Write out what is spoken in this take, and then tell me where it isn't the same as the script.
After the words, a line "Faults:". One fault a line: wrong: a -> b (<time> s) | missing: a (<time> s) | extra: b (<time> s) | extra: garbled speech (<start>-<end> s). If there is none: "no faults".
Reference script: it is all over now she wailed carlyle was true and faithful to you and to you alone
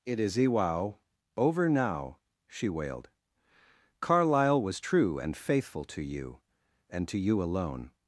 it is iwao over now she wailed carlyle was true and faithful to you and to you alone
Faults:
wrong: all -> iwao (0.3 s)